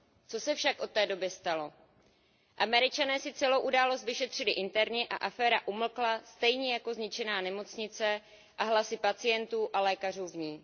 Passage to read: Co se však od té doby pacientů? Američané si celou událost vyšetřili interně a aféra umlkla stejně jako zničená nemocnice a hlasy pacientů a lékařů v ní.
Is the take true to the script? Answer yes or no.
no